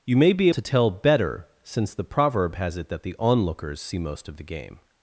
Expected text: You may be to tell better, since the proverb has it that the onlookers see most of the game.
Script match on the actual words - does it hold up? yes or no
yes